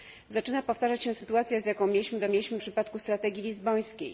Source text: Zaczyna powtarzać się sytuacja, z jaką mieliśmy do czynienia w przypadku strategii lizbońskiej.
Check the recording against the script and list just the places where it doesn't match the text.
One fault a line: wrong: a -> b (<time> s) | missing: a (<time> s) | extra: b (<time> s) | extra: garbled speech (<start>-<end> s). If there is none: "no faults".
wrong: czynienia -> mieliśmy (2.3 s)